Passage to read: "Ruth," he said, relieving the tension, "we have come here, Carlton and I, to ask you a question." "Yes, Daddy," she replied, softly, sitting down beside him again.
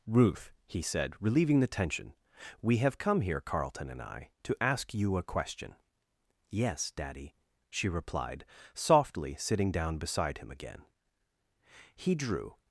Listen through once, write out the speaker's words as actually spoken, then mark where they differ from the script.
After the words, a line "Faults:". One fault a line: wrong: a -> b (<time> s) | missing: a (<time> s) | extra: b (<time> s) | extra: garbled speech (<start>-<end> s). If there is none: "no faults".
"Ruth," he said, relieving the tension, "we have come here, Carlton and I, to ask you a question." "Yes, Daddy," she replied, softly, sitting down beside him again. He drew
Faults:
extra: He drew (11.9 s)